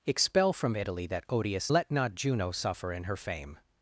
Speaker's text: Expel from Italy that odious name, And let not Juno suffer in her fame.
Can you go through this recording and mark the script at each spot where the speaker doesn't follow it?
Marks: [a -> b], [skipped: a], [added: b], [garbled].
Expel from Italy that odious [skipped: name, And] let not Juno suffer in her fame.